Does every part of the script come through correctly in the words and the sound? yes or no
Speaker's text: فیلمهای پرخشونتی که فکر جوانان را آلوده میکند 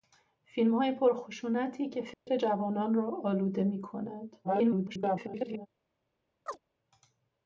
no